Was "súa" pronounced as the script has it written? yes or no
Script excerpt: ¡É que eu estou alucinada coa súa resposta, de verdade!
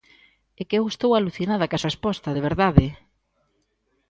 no